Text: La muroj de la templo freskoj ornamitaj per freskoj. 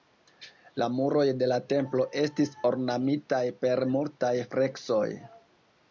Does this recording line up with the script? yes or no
no